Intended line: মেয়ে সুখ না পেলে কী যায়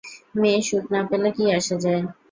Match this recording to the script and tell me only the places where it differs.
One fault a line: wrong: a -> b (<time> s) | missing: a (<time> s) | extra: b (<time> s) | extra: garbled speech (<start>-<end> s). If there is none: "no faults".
extra: আসে (1.6 s)